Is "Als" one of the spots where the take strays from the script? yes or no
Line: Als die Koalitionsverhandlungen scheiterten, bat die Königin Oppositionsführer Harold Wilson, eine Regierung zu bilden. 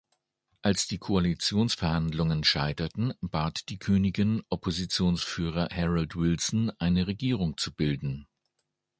no